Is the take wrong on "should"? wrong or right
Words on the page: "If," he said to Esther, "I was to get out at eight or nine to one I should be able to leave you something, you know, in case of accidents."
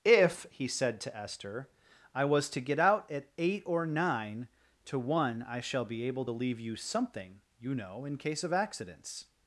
wrong